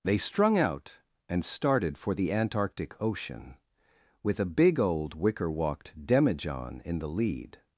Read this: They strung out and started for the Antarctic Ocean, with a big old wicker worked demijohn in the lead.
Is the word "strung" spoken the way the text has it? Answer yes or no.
yes